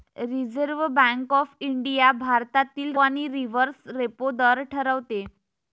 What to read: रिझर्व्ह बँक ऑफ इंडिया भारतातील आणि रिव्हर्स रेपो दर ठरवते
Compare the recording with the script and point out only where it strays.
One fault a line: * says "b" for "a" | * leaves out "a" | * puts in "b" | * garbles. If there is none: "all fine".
all fine